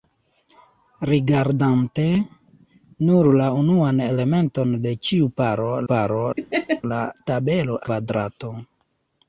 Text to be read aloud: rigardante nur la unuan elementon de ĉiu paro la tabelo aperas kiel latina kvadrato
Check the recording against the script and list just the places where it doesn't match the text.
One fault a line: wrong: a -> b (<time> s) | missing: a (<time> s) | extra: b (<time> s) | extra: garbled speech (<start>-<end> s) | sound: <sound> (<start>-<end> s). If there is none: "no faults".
extra: paro (5.9 s)
sound: laugh (6.4-6.8 s)
missing: aperas kiel latina (7.8 s)